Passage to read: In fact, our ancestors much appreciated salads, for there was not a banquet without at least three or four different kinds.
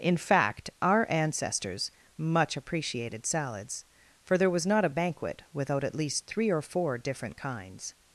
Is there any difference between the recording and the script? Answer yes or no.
no